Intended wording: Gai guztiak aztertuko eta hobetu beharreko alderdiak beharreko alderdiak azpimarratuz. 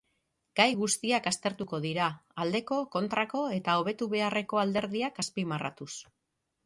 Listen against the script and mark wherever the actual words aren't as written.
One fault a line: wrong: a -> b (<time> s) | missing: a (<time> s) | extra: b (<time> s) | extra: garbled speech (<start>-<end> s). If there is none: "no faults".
extra: dira aldeko kontrako (1.9 s)
missing: beharreko alderdiak (5.2 s)